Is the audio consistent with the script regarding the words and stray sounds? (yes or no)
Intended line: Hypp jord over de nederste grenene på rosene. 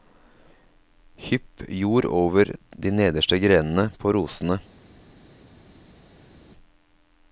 yes